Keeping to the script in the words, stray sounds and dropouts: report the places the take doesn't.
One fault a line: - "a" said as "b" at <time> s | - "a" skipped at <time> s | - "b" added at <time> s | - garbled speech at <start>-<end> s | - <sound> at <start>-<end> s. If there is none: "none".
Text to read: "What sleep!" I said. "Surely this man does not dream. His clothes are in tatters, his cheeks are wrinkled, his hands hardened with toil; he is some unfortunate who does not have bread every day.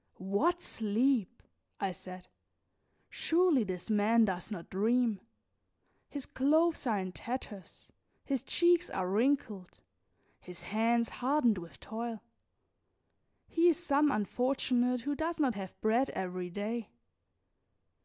none